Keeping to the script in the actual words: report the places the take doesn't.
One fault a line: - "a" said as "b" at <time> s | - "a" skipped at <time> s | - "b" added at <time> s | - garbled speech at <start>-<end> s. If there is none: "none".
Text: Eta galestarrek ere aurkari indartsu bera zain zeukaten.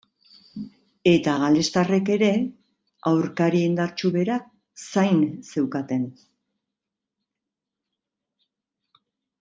none